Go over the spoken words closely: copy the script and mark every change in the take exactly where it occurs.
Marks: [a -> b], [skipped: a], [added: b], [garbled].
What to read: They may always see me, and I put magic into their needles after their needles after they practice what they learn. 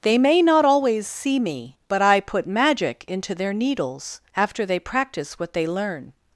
They may [added: not] always see me, [and -> but] I put magic into their needles after [skipped: their needles after] they practice what they learn.